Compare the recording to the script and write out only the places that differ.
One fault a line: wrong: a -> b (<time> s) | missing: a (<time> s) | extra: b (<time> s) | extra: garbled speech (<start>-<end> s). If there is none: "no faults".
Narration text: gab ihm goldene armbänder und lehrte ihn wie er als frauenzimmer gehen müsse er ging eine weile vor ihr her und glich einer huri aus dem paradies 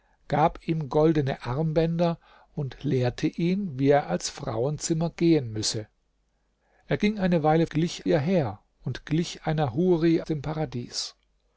wrong: vor -> glich (7.7 s)
missing: aus (10.2 s)